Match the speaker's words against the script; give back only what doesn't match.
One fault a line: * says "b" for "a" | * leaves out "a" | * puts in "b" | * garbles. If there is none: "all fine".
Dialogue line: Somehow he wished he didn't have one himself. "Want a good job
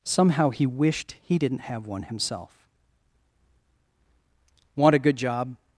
all fine